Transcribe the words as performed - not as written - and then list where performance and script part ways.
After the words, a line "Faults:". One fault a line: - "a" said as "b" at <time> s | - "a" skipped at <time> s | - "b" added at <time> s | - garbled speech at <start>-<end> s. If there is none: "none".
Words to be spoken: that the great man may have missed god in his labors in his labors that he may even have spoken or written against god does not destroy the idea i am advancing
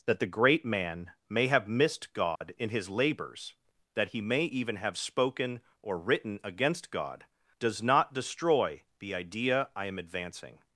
that the great man may have missed god in his labors that he may even have spoken or written against god does not destroy the idea i am advancing
Faults:
- "in his labors" skipped at 3.5 s